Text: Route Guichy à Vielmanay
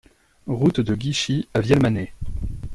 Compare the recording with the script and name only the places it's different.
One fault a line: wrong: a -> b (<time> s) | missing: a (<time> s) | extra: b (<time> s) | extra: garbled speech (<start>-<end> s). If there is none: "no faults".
extra: de (0.8 s)